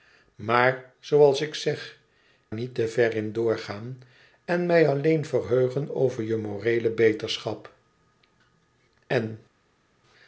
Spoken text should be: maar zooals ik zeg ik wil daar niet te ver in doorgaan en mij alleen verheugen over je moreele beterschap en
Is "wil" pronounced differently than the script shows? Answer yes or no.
yes